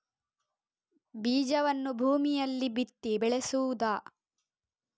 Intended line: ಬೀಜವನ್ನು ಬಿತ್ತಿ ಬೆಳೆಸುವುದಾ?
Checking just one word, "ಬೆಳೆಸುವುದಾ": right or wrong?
right